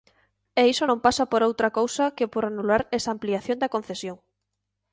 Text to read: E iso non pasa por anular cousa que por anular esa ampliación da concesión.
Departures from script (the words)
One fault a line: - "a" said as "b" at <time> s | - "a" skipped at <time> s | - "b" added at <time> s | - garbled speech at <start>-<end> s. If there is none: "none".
- "anular" said as "outra" at 1.5 s